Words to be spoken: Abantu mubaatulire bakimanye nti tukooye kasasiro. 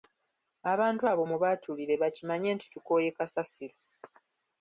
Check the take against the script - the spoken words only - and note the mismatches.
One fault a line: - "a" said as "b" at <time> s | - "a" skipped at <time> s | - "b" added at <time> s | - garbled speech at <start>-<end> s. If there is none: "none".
- "abo" added at 1.1 s